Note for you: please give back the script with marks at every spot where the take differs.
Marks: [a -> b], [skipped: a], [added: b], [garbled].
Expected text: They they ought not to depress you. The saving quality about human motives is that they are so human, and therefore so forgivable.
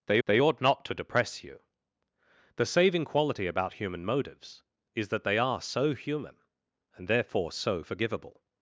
They they ought not to depress you. The saving quality about human motives is that they are so human, and therefore so forgivable.